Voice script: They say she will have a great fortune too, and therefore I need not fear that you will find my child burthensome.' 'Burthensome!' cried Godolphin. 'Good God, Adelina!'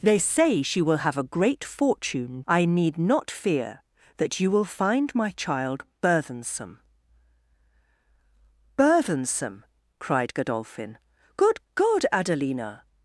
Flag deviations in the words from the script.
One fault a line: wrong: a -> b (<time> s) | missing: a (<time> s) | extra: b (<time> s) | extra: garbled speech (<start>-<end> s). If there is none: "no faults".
missing: too and therefore (2.4 s)